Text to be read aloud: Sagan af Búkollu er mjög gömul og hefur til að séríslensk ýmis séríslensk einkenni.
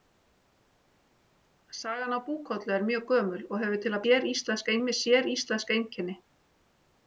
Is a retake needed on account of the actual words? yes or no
no